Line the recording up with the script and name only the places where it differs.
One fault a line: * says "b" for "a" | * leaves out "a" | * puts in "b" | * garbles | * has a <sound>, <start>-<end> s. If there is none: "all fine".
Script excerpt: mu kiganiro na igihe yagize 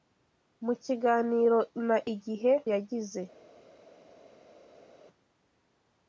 all fine